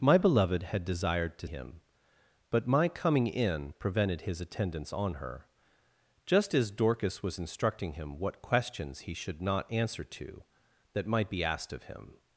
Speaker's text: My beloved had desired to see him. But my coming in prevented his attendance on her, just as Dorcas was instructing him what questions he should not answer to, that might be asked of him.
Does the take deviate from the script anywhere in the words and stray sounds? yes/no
yes